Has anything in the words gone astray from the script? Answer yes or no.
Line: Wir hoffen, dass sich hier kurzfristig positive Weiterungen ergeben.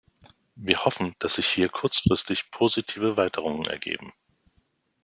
no